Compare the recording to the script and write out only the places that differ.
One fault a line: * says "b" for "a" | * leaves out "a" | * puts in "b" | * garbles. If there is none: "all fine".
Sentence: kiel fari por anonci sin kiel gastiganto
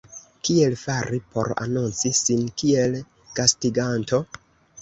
all fine